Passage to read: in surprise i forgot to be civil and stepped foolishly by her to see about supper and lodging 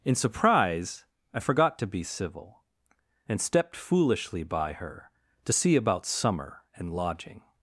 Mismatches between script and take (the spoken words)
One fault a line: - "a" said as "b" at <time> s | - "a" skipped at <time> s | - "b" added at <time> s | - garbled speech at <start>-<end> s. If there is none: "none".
- "supper" said as "summer" at 6.0 s